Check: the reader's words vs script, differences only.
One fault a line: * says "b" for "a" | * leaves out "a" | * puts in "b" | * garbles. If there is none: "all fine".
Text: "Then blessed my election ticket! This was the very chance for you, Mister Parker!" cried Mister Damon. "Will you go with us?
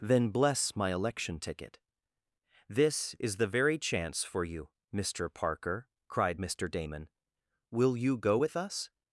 * says "bless" for "blessed"
* says "is" for "was"